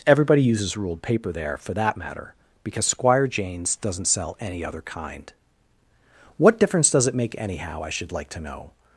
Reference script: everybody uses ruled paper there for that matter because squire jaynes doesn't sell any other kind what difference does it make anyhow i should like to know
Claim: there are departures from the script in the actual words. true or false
false